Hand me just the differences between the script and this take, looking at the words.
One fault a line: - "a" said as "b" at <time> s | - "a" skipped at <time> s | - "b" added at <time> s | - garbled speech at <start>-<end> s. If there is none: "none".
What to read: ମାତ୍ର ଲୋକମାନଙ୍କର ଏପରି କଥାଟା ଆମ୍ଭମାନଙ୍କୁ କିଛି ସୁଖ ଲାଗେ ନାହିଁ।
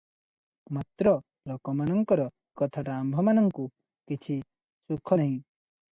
- "ଏପରି" skipped at 2.3 s
- "ଲାଗେ" skipped at 5.2 s